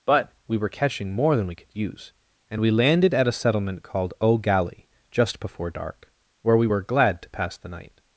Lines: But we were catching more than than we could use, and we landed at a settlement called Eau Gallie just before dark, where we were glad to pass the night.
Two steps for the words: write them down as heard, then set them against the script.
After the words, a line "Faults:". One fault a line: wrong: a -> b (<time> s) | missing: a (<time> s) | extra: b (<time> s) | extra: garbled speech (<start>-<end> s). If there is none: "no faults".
But we were catching more than we could use, and we landed at a settlement called Eau Gallie just before dark, where we were glad to pass the night.
Faults:
missing: than (1.5 s)